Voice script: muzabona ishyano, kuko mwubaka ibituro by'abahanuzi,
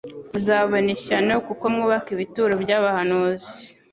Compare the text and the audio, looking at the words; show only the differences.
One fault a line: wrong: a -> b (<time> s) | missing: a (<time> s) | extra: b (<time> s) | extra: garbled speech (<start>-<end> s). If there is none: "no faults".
no faults